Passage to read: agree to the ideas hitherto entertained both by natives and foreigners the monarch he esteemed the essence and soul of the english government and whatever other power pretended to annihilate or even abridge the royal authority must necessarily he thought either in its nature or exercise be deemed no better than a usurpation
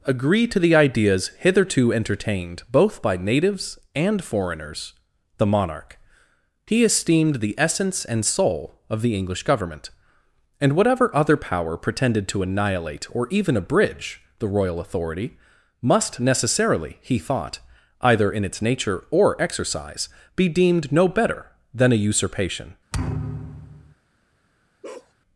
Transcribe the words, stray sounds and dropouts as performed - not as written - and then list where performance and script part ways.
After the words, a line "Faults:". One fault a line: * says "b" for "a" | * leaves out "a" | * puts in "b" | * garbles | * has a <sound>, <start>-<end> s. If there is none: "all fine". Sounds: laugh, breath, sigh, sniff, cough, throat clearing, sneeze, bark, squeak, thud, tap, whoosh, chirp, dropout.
agree to the ideas hitherto entertained both by natives and foreigners the monarch he esteemed the essence and soul of the english government and whatever other power pretended to annihilate or even abridge the royal authority must necessarily he thought either in its nature or exercise be deemed no better than a usurpation
Faults:
* has a thud, 22.9-24.0 s
* has a bark, 24.8-25.1 s